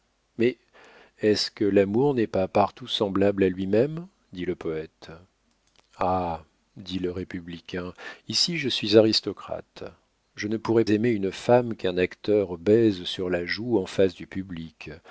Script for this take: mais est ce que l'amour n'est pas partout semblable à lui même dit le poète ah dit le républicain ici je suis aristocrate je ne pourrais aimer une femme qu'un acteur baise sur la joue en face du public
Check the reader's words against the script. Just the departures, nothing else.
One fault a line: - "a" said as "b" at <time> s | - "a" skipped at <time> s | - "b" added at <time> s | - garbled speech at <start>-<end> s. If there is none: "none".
none